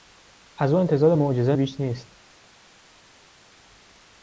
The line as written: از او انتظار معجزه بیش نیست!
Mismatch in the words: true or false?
false